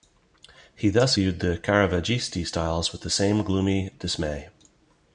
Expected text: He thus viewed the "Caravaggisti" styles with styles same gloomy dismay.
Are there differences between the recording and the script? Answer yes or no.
yes